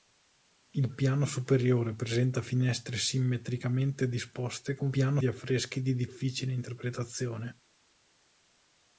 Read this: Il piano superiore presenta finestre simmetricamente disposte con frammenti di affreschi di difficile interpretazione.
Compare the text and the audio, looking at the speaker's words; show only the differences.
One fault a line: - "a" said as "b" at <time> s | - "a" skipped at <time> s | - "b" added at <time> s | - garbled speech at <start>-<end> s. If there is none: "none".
- "frammenti" said as "piano" at 4.9 s